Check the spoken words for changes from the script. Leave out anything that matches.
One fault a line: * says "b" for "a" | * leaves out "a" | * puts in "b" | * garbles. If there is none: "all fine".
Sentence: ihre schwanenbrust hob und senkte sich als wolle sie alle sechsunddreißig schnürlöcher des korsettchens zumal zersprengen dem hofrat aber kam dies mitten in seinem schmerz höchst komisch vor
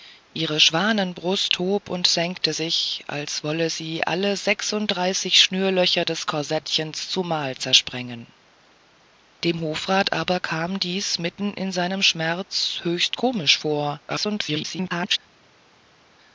* garbles